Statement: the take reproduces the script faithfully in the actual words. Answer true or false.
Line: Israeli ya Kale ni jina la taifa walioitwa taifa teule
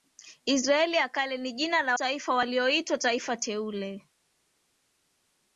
true